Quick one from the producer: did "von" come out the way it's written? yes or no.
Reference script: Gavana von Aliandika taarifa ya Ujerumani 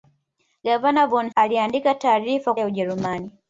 yes